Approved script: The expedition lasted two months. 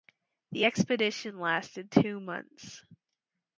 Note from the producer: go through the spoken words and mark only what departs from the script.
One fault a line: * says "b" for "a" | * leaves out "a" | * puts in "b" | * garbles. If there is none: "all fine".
all fine